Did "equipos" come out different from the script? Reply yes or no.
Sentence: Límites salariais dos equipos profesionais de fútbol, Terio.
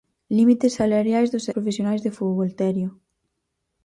yes